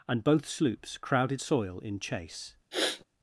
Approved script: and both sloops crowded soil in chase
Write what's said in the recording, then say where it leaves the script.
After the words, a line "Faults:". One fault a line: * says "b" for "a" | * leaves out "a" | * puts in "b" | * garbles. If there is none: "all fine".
and both sloops crowded soil in chase
Faults:
all fine